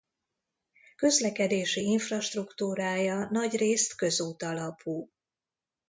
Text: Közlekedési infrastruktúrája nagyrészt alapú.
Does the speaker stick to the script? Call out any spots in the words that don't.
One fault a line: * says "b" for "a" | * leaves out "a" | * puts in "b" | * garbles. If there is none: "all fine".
* puts in "közút"